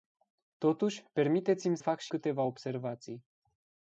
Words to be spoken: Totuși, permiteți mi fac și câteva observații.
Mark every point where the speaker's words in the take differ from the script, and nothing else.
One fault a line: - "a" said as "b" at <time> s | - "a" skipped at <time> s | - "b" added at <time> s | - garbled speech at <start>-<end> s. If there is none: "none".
none